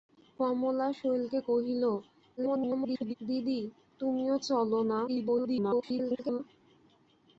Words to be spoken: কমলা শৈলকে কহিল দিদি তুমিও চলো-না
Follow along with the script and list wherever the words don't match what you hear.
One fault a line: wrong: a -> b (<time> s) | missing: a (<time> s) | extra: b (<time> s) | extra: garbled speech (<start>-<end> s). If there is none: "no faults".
extra: garbled speech (2.4-3.1 s)
extra: garbled speech (5.1-6.4 s)